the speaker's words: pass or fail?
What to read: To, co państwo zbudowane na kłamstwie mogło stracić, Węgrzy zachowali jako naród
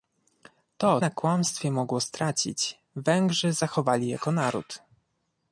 fail